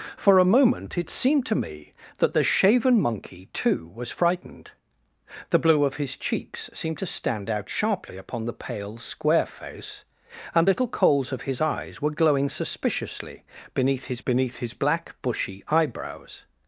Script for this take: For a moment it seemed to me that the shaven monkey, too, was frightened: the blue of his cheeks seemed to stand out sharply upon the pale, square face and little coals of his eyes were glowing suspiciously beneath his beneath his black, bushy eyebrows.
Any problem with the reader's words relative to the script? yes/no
no